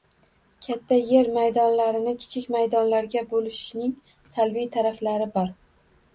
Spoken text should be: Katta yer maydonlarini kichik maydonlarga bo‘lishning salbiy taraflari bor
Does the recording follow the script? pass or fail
pass